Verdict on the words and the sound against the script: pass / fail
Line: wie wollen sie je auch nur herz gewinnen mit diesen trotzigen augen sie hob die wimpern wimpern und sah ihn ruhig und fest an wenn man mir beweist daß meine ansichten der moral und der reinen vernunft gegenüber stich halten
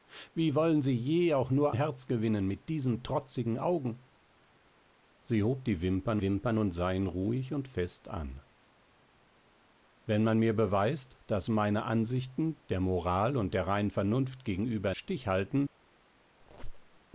fail